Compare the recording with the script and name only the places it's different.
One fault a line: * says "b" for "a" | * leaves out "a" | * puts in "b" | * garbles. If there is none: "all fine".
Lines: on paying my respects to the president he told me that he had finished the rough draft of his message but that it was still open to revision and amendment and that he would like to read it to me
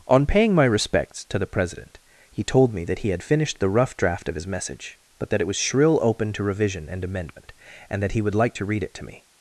* says "shrill" for "still"